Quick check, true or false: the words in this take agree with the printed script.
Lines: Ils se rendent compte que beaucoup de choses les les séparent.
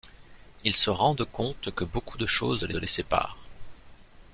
true